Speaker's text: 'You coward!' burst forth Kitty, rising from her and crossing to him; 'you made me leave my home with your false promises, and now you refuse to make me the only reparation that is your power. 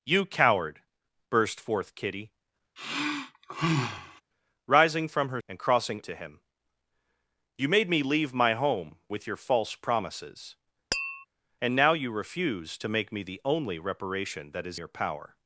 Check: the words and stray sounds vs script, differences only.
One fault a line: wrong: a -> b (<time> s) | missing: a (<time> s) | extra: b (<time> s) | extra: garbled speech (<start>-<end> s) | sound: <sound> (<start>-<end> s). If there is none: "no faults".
sound: sigh (2.8-4.2 s)
sound: tap (10.9-11.3 s)